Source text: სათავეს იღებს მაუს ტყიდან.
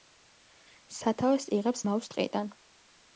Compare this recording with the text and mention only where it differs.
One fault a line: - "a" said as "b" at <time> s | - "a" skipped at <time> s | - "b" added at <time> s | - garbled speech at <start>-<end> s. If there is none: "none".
none